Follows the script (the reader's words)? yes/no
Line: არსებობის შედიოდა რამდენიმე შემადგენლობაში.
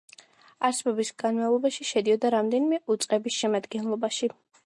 no